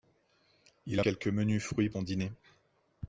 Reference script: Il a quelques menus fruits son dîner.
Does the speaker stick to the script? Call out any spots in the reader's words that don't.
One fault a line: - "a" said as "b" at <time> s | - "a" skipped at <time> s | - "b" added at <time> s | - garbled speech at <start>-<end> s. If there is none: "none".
none